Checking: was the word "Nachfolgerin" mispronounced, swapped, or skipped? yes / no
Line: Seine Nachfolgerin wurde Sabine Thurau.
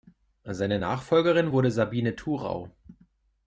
no